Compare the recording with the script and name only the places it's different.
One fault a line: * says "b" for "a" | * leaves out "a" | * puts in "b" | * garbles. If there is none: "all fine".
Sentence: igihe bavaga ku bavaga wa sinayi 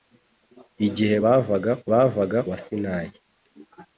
all fine